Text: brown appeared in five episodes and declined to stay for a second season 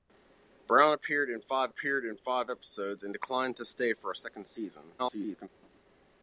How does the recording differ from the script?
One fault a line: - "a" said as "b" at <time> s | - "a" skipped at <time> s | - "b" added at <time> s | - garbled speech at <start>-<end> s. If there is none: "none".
- "appeared in five" added at 1.7 s
- garbled speech at 5.0-5.5 s